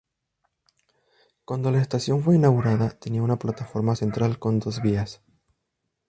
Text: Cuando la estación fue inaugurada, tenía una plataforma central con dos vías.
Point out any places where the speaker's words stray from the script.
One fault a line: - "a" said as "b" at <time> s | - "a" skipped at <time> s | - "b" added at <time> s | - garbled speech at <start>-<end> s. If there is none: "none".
none